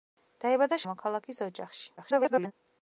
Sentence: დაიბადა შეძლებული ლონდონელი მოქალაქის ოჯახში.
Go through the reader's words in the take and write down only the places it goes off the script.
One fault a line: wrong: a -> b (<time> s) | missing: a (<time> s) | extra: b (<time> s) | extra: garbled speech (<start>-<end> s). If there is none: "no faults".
missing: შეძლებული ლონდონელი (0.8 s)
extra: garbled speech (2.0-2.5 s)